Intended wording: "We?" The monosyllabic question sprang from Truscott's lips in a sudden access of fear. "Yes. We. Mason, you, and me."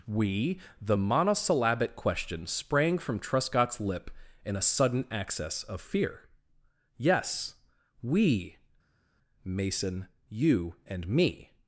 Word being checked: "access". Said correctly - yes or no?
yes